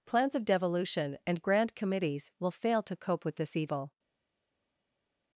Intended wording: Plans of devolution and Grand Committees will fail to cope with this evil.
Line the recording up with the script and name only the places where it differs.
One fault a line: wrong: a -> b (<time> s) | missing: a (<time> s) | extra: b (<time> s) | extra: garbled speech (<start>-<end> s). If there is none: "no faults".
no faults